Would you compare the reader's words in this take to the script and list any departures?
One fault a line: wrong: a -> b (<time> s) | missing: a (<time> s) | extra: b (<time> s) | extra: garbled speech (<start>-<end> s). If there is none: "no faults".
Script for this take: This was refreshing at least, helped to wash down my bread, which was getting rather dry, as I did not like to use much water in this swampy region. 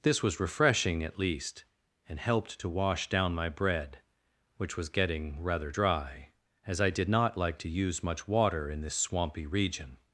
extra: and (2.1 s)